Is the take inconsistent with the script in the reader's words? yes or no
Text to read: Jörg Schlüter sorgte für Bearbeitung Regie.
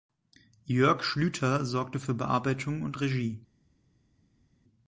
yes